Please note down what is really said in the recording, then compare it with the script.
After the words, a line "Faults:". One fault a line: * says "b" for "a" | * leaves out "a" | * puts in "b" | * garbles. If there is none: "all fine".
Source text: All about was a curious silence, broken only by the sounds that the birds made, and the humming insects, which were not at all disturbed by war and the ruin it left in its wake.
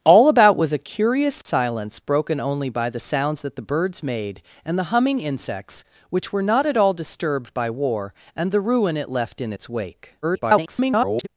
All about was a curious silence, broken only by the sounds that the birds made, and the humming insects, which were not at all disturbed by war and the ruin it left in its wake. [garbled]
Faults:
* garbles